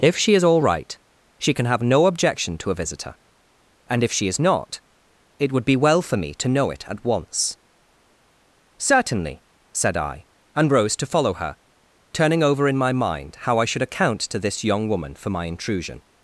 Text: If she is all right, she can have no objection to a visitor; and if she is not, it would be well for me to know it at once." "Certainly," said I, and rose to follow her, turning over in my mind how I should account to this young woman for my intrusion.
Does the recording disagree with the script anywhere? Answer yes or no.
no